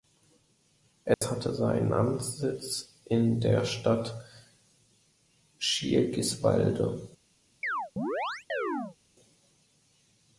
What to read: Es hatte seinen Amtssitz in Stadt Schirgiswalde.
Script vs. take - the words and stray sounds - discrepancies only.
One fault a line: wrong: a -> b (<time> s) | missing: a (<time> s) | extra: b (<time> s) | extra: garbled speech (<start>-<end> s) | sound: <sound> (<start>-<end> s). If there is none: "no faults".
sound: dropout (1.1-1.2 s)
extra: der (3.4 s)
sound: chirp (7.6-9.0 s)